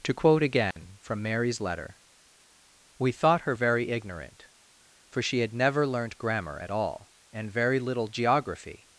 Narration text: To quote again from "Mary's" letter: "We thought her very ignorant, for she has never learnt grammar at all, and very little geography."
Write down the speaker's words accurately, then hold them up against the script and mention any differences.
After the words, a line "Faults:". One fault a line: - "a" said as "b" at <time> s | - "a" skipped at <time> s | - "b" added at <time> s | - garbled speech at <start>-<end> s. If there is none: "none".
To quote again from "Mary's" letter: "We thought her very ignorant, for she had never learnt grammar at all, and very little geography."
Faults:
- "has" said as "had" at 5.4 s